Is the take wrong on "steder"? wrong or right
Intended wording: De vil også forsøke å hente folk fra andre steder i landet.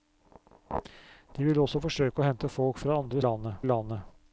wrong